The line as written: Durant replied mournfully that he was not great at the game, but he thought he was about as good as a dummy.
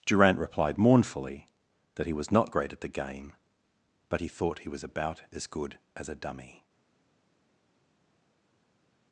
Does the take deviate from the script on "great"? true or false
false